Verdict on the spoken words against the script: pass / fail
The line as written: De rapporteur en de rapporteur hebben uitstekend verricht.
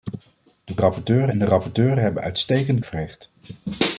pass